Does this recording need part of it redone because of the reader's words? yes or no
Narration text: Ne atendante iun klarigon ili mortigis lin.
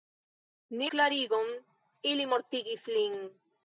yes